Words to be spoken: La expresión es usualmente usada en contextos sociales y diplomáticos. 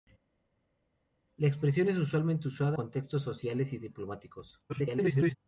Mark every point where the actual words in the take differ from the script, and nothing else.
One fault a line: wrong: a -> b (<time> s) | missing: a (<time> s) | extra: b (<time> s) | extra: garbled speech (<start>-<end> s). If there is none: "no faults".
missing: en (2.8 s)
extra: garbled speech (4.7-5.4 s)